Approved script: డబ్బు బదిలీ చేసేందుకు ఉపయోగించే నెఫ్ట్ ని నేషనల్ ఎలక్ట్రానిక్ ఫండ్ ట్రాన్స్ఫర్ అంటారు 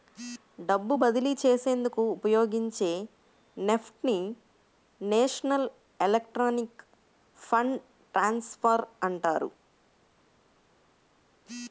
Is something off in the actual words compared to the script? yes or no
no